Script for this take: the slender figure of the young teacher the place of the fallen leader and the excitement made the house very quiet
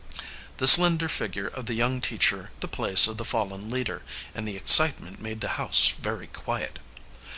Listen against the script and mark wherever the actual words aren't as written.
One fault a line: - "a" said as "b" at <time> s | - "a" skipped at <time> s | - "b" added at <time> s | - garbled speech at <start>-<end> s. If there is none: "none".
none